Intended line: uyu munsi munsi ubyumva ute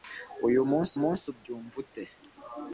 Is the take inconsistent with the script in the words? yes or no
no